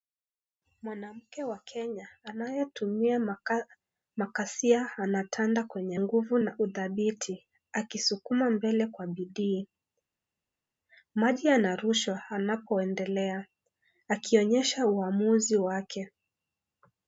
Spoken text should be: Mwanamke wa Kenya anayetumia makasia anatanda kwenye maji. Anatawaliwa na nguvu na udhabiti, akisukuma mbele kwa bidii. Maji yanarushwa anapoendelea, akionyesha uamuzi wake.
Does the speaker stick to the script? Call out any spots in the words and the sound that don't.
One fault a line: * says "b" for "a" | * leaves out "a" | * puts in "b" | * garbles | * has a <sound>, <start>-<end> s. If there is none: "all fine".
* leaves out "maji Anatawaliwa na"